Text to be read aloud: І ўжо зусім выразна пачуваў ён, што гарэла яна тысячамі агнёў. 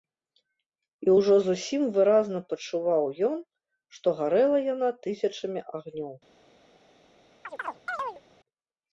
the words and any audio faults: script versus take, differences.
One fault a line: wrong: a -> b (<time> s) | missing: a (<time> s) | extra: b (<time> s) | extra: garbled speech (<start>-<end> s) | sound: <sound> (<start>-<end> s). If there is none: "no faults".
sound: chirp (7.4-8.2 s)